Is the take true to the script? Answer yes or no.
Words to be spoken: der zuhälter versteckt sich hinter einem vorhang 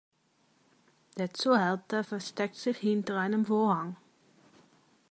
yes